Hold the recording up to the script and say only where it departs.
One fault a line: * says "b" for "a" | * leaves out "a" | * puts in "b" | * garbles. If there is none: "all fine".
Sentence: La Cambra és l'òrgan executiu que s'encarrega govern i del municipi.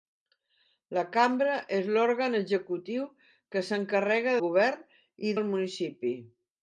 all fine